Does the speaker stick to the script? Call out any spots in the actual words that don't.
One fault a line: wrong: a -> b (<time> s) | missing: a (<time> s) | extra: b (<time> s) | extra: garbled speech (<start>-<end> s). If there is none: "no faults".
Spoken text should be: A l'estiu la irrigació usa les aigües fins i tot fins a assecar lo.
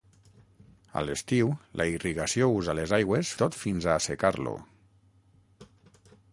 missing: fins (3.4 s)